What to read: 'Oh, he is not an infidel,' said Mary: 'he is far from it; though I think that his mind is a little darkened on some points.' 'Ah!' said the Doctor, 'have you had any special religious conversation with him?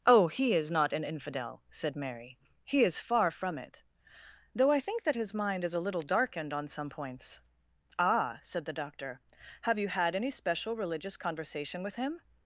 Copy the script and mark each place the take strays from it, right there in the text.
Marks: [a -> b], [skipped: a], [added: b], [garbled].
'Oh, he is not an infidel,' said Mary: 'he is far from it; though I think that his mind is a little darkened on some points.' 'Ah!' said the Doctor, 'have you had any special religious conversation with him?